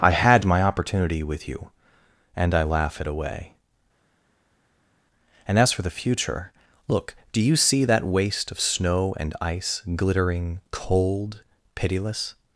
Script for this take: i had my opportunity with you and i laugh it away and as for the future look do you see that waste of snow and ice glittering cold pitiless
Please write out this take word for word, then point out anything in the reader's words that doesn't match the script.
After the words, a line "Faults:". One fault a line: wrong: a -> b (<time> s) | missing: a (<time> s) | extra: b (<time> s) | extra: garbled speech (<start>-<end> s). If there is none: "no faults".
i had my opportunity with you and i laugh it away and as for the future look do you see that waste of snow and ice glittering cold pitiless
Faults:
no faults